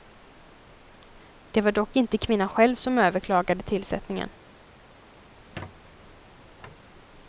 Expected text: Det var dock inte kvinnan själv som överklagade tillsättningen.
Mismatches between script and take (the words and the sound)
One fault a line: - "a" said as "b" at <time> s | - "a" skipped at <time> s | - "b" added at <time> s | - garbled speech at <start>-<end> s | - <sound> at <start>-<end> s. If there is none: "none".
- squeak at 5.3-6.9 s